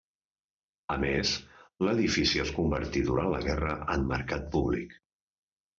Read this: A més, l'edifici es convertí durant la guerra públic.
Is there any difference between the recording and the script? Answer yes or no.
yes